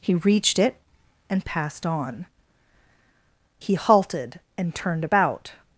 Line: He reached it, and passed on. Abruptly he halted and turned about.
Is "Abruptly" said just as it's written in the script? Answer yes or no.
no